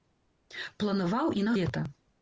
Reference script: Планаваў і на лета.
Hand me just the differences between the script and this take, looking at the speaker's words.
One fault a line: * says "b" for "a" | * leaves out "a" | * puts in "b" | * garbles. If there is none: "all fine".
all fine